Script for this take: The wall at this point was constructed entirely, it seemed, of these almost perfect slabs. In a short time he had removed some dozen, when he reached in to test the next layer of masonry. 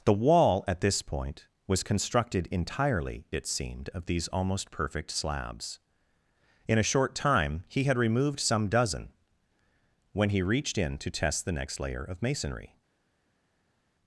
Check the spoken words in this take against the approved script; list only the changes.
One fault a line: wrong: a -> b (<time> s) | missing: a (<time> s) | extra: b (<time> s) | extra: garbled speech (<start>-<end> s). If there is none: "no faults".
no faults